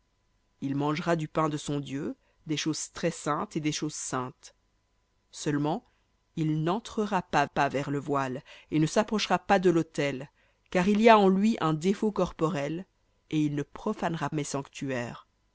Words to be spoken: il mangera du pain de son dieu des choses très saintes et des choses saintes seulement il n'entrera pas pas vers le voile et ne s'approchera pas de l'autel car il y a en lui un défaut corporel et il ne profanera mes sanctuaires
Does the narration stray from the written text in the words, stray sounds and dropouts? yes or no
no